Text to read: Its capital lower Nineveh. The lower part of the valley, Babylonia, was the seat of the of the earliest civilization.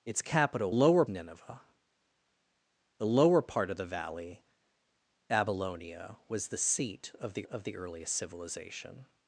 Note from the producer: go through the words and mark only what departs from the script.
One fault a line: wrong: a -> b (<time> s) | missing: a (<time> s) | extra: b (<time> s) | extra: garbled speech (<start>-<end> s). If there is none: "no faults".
no faults